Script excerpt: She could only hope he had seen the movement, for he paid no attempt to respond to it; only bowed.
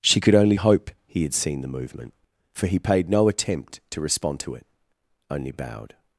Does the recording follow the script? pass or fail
pass